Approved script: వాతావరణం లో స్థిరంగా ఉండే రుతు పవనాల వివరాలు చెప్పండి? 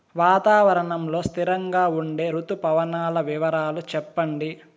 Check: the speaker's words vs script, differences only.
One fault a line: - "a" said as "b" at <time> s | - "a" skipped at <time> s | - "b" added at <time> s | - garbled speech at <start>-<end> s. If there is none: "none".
none